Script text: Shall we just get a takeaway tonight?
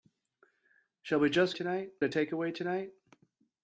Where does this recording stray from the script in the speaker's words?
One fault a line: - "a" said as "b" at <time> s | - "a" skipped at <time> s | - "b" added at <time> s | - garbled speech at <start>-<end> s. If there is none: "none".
- "get" said as "tonight" at 1.5 s